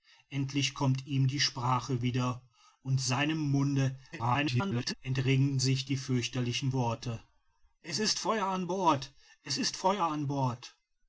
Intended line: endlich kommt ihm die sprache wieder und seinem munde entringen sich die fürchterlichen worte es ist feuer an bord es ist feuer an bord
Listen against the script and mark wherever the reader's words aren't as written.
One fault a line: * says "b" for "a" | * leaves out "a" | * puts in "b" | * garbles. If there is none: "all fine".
* garbles